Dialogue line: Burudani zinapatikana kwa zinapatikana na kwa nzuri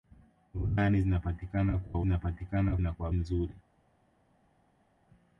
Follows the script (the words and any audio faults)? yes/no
yes